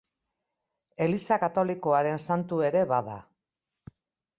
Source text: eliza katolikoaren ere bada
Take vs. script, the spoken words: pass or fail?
fail